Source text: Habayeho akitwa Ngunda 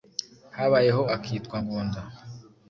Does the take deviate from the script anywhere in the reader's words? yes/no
no